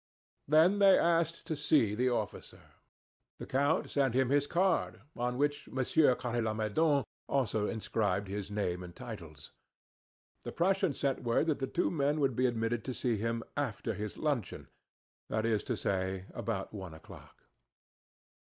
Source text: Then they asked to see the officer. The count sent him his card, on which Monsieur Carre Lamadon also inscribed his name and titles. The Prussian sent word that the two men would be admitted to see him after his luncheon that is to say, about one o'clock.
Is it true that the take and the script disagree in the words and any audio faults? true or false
false